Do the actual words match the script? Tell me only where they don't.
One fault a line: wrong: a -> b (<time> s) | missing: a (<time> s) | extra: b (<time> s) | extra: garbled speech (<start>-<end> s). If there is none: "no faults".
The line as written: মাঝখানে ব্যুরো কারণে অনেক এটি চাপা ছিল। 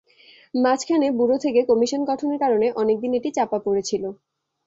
extra: থেকে কমিশন গঠনের (1.4 s)
extra: দিন (3.0 s)
extra: পড়ে (3.6 s)